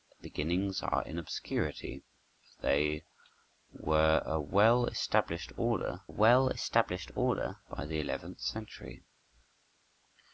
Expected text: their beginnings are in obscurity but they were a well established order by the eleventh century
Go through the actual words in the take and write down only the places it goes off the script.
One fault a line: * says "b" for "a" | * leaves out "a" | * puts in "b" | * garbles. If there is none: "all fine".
* puts in "well established order"